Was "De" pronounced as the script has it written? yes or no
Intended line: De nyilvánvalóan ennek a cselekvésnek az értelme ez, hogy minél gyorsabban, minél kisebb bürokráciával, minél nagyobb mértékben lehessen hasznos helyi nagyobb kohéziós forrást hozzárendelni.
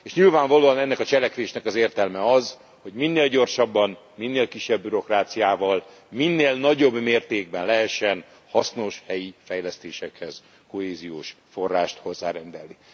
no